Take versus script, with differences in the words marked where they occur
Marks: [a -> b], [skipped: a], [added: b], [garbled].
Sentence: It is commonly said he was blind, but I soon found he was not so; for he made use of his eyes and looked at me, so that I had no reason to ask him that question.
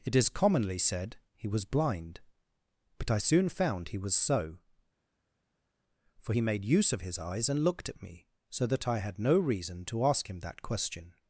It is commonly said he was blind, but I soon found he was [skipped: not] so; for he made use of his eyes and looked at me, so that I had no reason to ask him that question.